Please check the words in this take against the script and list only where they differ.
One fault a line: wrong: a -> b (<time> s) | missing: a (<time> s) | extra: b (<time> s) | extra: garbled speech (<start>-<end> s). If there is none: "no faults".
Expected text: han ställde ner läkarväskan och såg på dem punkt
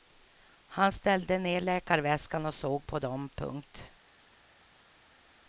no faults